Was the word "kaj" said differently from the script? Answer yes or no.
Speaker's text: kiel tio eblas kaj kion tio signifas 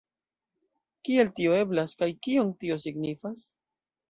no